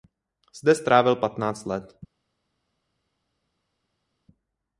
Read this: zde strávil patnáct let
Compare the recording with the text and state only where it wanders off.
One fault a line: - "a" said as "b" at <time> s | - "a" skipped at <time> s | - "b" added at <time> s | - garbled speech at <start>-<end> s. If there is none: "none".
none